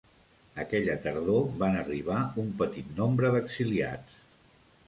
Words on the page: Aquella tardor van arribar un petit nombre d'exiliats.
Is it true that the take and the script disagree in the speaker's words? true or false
false